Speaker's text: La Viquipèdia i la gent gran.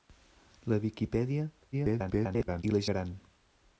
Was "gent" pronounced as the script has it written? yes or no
no